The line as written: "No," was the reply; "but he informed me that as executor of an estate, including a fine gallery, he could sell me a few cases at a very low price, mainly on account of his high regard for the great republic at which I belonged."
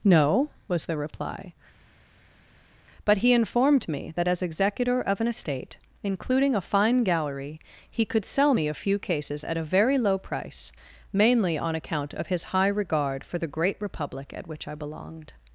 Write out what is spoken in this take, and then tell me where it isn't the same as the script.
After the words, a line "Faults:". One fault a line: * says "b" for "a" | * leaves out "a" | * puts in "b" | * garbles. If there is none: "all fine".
"No," was the reply; "but he informed me that as executor of an estate, including a fine gallery, he could sell me a few cases at a very low price, mainly on account of his high regard for the great republic at which I belonged."
Faults:
all fine